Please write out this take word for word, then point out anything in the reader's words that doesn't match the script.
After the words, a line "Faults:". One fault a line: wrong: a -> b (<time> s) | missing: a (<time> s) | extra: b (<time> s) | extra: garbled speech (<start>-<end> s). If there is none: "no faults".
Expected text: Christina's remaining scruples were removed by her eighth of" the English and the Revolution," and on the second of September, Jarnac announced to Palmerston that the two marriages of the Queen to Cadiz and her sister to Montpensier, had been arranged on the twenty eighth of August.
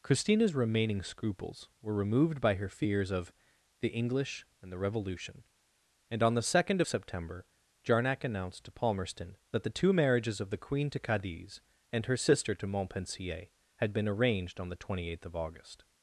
Christina's remaining scruples were removed by her fears of" the English and the Revolution," and on the second of September, Jarnac announced to Palmerston that the two marriages of the Queen to Cadiz and her sister to Montpensier, had been arranged on the twenty eighth of August.
Faults:
wrong: eighth -> fears (2.7 s)